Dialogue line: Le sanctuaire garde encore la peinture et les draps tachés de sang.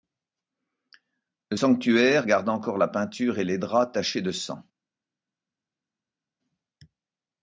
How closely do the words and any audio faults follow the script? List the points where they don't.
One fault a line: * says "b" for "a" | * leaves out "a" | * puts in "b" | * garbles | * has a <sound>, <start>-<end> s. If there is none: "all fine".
all fine